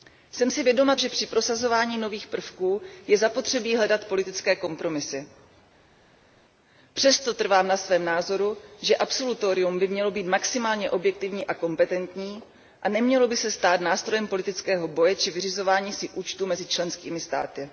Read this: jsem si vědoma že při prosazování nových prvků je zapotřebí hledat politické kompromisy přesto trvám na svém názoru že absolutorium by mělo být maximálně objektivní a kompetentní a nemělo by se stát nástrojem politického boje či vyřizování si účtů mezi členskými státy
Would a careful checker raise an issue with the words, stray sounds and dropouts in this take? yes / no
no